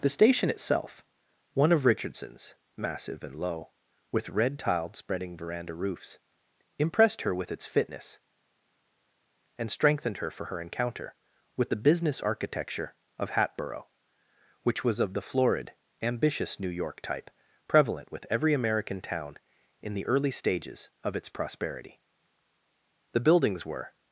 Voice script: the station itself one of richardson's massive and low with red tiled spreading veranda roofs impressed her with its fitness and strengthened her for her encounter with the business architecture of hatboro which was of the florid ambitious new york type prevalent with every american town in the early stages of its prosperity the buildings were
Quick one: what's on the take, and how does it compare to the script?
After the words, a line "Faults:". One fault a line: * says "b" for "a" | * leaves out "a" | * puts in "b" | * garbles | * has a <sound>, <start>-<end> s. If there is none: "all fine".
the station itself one of richardson's massive and low with red tiled spreading veranda roofs impressed her with its fitness and strengthened her for her encounter with the business architecture of hatboro which was of the florid ambitious new york type prevalent with every american town in the early stages of its prosperity the buildings were
Faults:
all fine